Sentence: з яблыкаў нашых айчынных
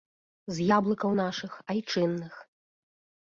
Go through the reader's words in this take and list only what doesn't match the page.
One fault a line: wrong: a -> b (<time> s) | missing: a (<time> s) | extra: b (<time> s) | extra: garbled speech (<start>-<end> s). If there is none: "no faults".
no faults